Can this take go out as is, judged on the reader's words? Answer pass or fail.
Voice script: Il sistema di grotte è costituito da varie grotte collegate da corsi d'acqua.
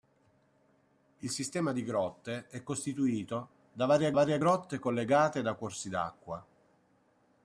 fail